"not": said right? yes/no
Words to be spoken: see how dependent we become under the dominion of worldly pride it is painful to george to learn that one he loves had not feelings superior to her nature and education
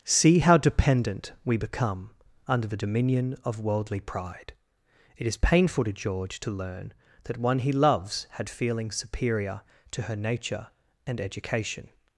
no